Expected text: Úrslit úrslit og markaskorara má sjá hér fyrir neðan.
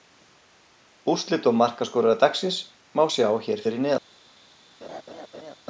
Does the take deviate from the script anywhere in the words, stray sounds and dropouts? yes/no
yes